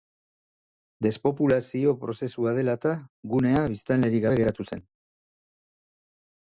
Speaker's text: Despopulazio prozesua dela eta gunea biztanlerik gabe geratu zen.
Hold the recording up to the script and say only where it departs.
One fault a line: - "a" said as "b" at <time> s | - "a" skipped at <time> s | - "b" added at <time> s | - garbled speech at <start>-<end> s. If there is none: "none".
none